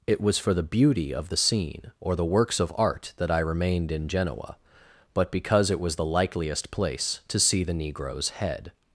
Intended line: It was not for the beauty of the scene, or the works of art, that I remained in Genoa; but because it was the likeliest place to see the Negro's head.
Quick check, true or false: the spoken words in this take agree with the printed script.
false